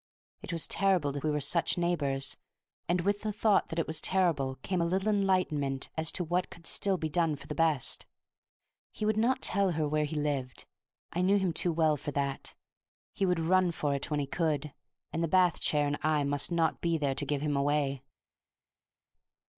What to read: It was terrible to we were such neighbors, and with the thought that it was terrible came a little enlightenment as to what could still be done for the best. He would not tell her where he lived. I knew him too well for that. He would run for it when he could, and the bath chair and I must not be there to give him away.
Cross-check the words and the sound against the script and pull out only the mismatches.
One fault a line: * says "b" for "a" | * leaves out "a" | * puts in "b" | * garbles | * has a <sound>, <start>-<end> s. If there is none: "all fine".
all fine